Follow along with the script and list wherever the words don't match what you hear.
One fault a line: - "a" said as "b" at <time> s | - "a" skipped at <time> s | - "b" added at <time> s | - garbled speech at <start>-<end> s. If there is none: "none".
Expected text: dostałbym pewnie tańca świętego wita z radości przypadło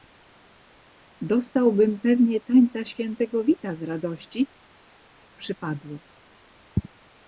none